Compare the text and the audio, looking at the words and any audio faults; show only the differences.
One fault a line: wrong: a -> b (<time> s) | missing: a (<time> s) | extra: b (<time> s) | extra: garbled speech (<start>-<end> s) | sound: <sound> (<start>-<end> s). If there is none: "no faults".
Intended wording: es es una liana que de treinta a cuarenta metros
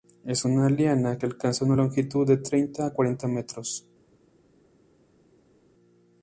missing: es (0.5 s)
extra: alcanza una longitud (1.2 s)